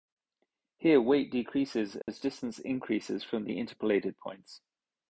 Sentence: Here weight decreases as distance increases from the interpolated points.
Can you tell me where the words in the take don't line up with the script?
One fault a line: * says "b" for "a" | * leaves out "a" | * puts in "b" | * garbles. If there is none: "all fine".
all fine